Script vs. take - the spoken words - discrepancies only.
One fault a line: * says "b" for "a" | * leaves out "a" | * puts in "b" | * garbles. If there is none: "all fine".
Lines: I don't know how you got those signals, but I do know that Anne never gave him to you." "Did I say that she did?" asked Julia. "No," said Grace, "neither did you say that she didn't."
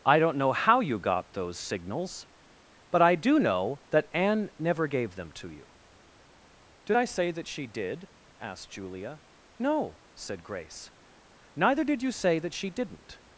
* says "them" for "him"